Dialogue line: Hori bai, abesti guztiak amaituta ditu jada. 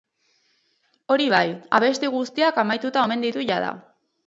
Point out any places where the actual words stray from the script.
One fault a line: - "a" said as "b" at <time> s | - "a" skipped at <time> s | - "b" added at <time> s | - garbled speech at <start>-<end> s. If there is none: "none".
- "omen" added at 3.1 s